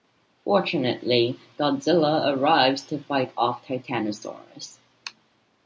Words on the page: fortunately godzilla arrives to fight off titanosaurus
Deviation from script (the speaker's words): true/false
false